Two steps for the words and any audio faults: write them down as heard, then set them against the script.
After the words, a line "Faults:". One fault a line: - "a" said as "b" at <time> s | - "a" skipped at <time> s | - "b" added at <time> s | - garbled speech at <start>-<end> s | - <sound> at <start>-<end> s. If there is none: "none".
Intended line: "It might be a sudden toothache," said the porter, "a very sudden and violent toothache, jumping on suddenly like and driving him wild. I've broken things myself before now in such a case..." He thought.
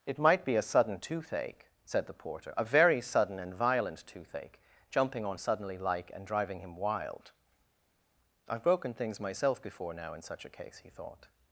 "It might be a sudden toothache," said the porter, "a very sudden and violent toothache, jumping on suddenly like and driving him wild. I've broken things myself before now in such a case..." He thought.
Faults:
none